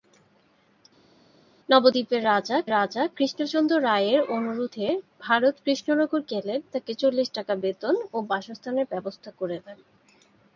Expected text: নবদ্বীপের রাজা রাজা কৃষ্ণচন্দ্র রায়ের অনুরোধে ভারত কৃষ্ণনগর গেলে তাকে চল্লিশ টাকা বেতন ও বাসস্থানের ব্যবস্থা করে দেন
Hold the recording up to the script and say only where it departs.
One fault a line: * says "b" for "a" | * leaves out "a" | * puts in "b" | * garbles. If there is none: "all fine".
all fine